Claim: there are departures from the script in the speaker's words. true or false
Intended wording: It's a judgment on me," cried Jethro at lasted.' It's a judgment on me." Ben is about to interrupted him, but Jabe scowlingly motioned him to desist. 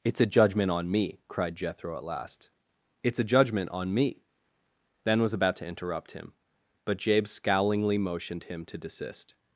true